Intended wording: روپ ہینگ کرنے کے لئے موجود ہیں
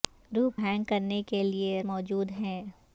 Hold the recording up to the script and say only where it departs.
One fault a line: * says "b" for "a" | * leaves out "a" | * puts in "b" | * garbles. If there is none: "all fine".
all fine